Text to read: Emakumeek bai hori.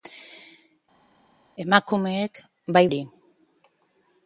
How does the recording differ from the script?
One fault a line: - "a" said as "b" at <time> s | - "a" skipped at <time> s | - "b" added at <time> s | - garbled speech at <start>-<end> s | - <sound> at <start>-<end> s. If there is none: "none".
none